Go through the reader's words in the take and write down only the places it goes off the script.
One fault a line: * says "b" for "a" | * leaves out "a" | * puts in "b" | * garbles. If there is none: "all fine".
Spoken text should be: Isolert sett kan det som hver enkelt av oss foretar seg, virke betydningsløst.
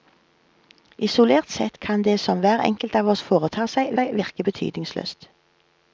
* puts in "seg"